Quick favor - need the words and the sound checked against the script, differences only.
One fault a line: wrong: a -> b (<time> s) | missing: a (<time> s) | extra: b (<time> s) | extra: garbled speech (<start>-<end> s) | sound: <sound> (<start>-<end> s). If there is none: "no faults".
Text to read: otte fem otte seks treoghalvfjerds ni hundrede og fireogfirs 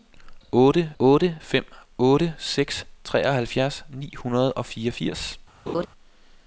extra: otte (1.0 s)
sound: laugh (5.7-5.9 s)